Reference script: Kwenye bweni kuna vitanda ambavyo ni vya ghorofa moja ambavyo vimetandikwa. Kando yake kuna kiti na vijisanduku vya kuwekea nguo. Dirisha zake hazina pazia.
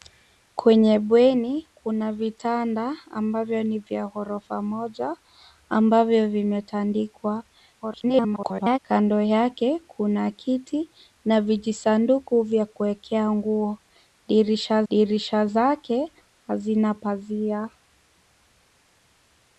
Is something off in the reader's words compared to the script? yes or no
yes